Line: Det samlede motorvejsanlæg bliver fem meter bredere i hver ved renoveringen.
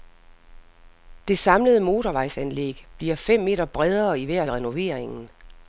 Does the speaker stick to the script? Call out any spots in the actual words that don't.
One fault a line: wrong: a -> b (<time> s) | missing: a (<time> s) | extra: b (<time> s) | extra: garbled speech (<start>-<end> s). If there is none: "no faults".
no faults